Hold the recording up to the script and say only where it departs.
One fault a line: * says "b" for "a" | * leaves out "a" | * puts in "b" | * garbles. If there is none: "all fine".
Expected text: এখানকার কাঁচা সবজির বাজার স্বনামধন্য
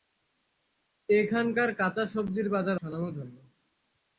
all fine